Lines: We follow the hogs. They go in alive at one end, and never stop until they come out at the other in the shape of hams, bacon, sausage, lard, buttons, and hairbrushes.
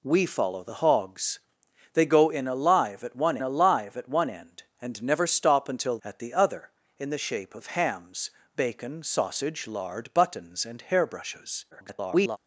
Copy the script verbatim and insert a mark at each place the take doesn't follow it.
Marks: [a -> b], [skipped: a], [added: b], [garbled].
We follow the hogs. They go in alive at one [added: alive at one] end, and never stop until [skipped: they come out] at the other in the shape of hams, bacon, sausage, lard, buttons, and hairbrushes. [garbled]